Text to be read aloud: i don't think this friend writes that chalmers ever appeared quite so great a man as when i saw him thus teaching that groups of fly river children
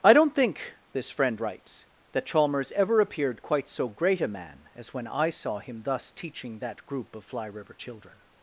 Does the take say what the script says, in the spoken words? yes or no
no